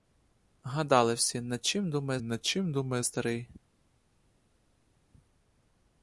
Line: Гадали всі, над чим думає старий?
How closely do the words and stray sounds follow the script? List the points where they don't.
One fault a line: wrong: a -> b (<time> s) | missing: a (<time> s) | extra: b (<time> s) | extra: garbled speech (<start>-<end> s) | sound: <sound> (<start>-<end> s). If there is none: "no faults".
extra: над чим думає (2.2 s)